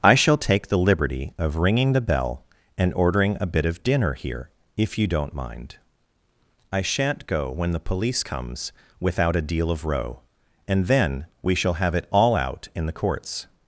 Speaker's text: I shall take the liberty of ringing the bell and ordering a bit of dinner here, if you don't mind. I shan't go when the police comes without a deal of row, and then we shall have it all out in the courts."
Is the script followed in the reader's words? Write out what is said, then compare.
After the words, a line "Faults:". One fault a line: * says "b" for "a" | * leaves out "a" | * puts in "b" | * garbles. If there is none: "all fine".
I shall take the liberty of ringing the bell and ordering a bit of dinner here, if you don't mind. I shan't go when the police comes without a deal of row, and then we shall have it all out in the courts."
Faults:
all fine